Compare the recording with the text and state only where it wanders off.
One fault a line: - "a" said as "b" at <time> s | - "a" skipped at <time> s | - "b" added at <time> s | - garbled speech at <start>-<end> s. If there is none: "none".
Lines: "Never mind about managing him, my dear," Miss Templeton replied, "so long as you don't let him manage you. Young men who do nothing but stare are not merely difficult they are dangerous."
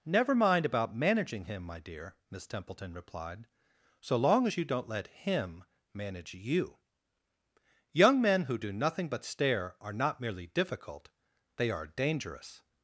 none